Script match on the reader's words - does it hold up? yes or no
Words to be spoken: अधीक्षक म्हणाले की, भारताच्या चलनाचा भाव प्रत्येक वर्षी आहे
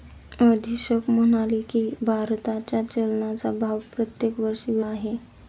yes